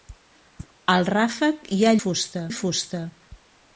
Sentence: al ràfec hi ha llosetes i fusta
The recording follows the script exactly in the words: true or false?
false